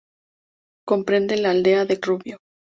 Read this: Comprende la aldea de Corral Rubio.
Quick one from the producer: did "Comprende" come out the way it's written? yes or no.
yes